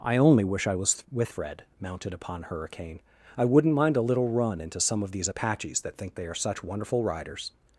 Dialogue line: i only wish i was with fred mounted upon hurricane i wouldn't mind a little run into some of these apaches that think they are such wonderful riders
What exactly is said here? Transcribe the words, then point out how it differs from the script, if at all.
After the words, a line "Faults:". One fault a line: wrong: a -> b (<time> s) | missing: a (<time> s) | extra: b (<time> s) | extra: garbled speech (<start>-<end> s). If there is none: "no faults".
i only wish i was with fred mounted upon hurricane i wouldn't mind a little run into some of these apaches that think they are such wonderful riders
Faults:
no faults